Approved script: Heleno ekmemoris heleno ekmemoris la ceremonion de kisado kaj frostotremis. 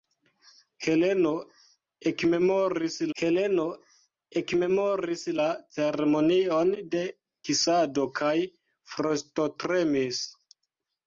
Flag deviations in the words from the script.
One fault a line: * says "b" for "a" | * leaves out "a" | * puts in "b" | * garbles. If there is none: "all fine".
all fine